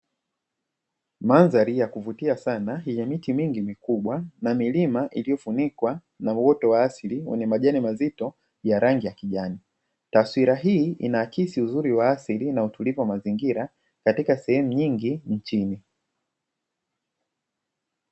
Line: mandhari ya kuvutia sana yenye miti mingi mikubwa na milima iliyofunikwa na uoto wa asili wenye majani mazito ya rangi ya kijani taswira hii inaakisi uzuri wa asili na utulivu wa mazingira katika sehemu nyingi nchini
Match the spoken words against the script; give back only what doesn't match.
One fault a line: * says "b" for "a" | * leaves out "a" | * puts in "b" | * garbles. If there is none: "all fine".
all fine